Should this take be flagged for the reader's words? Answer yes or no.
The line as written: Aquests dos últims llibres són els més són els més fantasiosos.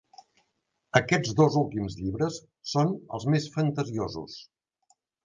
yes